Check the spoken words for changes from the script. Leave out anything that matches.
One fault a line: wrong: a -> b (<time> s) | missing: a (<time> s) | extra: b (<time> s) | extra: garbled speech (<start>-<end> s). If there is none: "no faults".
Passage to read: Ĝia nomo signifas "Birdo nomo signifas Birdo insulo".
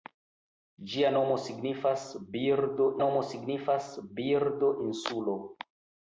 no faults